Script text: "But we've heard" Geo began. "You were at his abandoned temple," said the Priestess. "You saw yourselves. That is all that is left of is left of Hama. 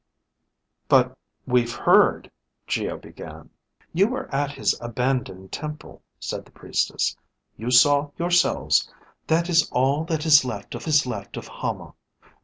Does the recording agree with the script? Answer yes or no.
yes